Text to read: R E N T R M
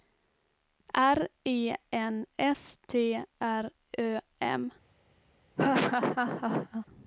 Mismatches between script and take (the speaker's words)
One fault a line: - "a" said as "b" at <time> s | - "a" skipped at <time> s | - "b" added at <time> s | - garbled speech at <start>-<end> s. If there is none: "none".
- "S" added at 2.4 s
- "Ö" added at 4.0 s